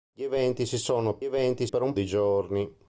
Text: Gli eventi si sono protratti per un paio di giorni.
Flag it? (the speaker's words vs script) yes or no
yes